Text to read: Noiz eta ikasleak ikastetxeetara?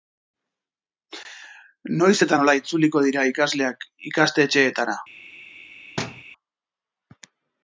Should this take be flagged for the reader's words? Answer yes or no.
yes